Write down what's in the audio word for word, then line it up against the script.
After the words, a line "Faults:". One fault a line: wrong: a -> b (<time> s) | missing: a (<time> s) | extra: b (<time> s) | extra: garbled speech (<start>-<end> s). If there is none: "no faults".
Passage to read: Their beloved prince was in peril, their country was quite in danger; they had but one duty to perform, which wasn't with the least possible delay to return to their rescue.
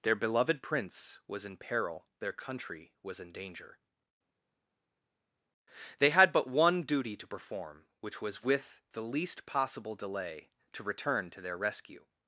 Their beloved prince was in peril, their country was in danger; they had but one duty to perform, which was with the least possible delay to return to their rescue.
Faults:
missing: quite (3.2 s)
wrong: wasn't -> was (8.2 s)